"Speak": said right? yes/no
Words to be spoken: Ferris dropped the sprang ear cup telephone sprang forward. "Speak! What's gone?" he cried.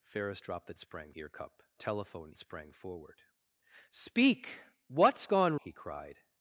yes